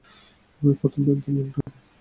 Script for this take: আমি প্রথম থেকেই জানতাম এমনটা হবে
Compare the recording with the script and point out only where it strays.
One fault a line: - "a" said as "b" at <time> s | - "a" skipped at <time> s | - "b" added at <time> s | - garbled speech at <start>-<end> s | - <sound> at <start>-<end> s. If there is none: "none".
- "থেকেই" skipped at 1.0 s
- dropout at 1.6-1.7 s